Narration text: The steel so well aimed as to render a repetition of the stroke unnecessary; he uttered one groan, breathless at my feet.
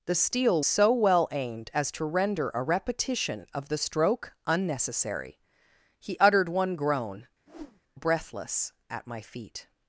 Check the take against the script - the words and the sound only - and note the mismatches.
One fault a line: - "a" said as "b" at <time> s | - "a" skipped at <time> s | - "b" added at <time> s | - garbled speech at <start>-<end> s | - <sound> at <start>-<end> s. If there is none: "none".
- whoosh at 7.5-7.8 s